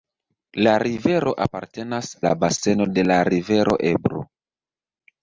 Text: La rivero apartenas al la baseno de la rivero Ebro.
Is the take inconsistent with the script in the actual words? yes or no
yes